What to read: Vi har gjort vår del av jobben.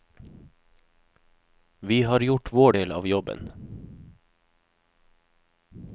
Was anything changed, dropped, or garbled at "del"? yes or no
no